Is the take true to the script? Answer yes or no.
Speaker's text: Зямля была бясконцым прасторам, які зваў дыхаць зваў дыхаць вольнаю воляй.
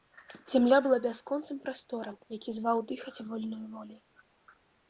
no